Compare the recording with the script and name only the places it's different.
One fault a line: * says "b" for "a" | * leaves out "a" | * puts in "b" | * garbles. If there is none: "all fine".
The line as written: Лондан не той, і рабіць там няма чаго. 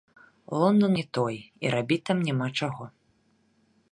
all fine